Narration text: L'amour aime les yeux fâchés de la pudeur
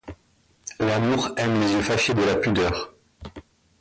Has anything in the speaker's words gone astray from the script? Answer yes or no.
no